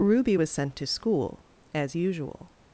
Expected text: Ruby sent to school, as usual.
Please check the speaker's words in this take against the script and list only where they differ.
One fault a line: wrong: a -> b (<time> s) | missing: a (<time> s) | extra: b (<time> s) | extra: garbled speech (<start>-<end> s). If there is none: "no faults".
extra: was (0.3 s)